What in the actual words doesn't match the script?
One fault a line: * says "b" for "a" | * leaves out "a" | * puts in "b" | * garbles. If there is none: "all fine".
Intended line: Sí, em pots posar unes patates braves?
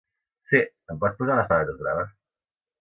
all fine